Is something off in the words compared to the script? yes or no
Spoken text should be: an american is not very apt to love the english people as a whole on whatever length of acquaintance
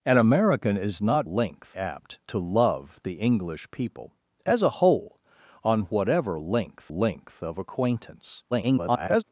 yes